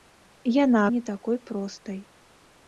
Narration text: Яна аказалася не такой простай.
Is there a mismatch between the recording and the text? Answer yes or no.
yes